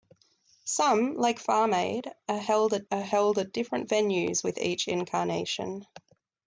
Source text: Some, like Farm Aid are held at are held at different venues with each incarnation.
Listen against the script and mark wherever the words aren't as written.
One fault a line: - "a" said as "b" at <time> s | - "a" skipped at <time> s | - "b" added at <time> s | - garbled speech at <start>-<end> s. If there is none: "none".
none